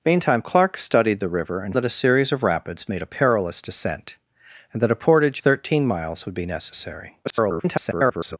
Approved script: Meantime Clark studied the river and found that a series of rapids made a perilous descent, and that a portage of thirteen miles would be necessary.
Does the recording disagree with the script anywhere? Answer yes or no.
yes